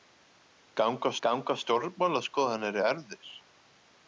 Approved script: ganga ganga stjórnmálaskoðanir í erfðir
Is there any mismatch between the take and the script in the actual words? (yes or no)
no